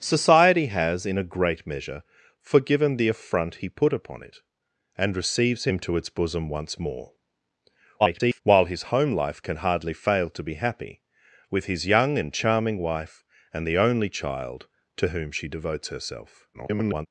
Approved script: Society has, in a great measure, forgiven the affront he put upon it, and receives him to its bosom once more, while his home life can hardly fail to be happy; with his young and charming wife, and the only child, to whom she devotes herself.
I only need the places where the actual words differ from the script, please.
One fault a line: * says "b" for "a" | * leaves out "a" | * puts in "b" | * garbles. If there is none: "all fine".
* garbles
* garbles